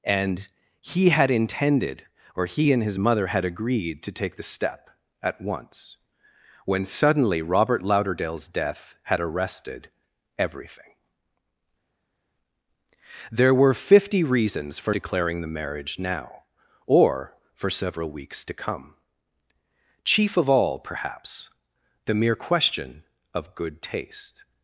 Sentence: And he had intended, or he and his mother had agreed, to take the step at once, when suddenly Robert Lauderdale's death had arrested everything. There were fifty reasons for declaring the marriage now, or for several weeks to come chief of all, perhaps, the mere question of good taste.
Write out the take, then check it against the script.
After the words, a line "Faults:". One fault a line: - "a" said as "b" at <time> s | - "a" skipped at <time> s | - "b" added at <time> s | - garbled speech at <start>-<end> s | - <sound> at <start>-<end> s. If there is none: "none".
And he had intended, or he and his mother had agreed, to take the step at once, when suddenly Robert Lauderdale's death had arrested everything. There were fifty reasons for declaring the marriage now, or for several weeks to come chief of all, perhaps, the mere question of good taste.
Faults:
none